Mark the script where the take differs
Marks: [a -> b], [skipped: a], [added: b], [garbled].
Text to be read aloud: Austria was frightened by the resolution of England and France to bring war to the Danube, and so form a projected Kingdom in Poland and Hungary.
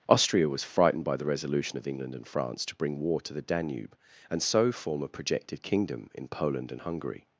Austria was frightened by the resolution of England and France to bring war to the Danube, and so form a projected Kingdom in Poland and Hungary.